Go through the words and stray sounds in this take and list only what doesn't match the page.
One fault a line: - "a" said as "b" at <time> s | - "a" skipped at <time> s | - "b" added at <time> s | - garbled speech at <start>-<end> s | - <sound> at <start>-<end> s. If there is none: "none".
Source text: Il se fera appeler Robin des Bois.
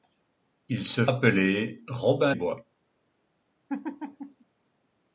- "fera" skipped at 1.1 s
- "des" skipped at 2.4 s
- laugh at 3.7-4.4 s